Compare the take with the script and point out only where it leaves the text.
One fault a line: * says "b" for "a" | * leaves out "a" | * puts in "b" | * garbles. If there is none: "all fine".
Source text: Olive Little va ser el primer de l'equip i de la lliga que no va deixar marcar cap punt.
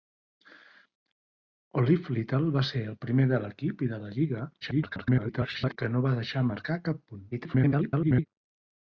* garbles
* garbles